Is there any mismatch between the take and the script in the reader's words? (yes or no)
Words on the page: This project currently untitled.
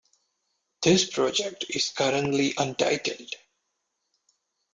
yes